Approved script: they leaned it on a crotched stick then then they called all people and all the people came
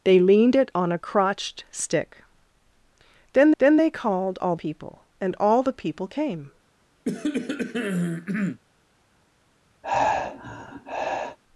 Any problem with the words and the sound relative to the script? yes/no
yes